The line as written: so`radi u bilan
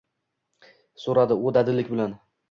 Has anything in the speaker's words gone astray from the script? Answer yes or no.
yes